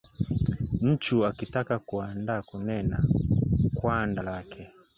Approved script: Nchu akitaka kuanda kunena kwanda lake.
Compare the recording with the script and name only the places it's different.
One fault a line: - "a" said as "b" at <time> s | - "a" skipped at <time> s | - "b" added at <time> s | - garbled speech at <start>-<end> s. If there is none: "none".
none